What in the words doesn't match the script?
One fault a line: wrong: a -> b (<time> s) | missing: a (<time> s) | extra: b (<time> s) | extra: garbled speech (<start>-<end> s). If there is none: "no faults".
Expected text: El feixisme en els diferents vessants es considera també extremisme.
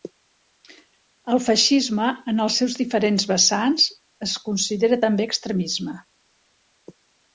extra: seus (2.6 s)